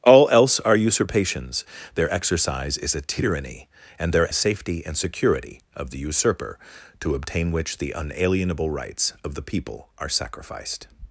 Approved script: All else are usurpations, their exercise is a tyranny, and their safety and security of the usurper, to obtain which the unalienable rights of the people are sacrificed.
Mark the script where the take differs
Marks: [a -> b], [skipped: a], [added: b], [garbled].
All else are usurpations, their exercise is a tyranny, and their safety and security of the usurper, to obtain which the unalienable rights of the people are sacrificed.